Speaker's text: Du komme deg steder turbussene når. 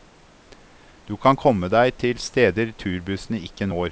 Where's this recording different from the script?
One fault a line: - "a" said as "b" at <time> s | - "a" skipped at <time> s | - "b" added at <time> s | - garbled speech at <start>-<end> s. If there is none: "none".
- "kan" added at 1.2 s
- "til" added at 2.0 s
- "ikke" added at 3.5 s